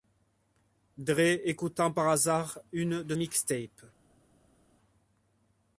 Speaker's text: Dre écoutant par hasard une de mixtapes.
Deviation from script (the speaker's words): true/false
false